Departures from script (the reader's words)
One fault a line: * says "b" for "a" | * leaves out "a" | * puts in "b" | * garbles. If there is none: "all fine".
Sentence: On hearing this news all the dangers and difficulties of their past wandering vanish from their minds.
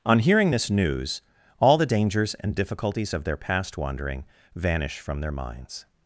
all fine